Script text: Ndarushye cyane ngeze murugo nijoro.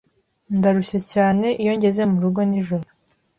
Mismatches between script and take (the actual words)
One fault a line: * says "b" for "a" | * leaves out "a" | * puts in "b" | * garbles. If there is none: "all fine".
* puts in "iyo"